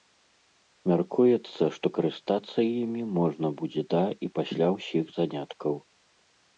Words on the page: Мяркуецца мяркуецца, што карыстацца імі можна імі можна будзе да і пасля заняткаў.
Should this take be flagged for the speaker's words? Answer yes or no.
yes